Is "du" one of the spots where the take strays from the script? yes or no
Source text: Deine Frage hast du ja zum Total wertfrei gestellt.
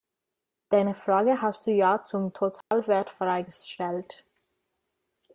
no